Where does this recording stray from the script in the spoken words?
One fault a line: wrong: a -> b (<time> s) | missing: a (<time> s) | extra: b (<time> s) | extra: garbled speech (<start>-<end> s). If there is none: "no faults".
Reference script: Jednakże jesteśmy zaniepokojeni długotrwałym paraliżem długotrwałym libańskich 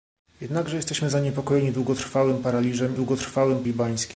no faults